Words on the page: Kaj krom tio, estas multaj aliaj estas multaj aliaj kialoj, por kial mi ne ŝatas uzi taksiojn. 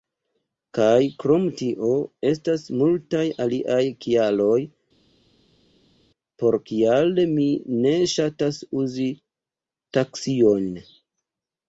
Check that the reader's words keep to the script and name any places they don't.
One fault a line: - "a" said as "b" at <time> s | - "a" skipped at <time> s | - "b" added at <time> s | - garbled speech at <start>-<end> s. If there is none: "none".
- "estas multaj aliaj" skipped at 3.8 s